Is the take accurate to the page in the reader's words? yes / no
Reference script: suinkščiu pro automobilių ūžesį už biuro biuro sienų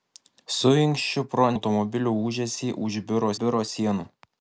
yes